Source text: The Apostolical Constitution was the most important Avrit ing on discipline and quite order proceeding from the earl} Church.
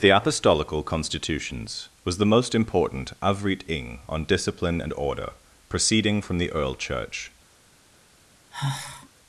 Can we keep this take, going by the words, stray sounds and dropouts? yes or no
no